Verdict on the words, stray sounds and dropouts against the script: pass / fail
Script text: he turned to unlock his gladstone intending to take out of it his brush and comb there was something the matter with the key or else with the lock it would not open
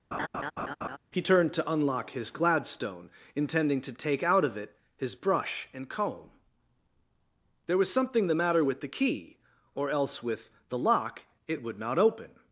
fail